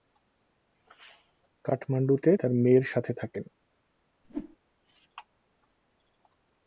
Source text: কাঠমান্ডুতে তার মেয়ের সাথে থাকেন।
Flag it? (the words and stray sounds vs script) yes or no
yes